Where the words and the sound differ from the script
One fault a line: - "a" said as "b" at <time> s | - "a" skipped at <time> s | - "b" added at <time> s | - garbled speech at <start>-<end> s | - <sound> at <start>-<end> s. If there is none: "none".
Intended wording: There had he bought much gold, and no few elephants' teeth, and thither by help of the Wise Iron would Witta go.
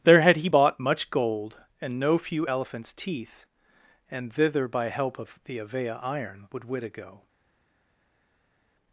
- "Wise" said as "Avea" at 5.6 s